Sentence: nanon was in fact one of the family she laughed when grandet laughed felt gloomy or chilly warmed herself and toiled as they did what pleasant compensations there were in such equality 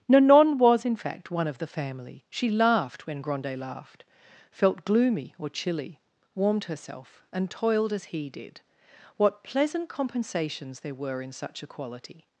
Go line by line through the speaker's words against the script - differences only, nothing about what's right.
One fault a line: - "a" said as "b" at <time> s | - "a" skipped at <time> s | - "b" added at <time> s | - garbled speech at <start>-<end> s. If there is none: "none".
- "they" said as "he" at 8.1 s